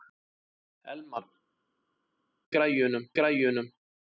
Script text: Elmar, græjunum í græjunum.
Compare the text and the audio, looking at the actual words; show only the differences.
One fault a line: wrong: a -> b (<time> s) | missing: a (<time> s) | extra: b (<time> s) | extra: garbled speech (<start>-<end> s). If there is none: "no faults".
no faults